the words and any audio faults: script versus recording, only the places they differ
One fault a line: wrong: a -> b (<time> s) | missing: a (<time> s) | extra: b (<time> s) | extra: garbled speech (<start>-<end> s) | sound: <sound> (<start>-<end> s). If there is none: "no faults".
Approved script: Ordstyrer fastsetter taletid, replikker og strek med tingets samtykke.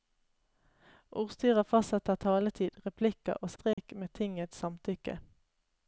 sound: dropout (3.7-3.8 s)